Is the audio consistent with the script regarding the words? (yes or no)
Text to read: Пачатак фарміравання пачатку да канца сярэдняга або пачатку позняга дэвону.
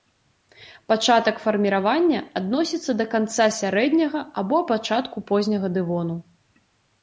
no